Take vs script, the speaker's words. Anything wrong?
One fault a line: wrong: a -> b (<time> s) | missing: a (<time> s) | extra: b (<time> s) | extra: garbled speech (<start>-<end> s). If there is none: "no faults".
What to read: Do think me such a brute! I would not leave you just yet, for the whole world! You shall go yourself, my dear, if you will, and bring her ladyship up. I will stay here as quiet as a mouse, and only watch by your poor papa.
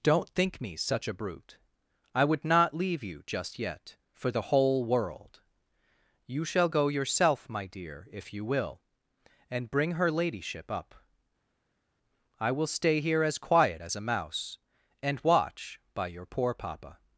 wrong: Do -> Don't (0.0 s)
missing: only (15.2 s)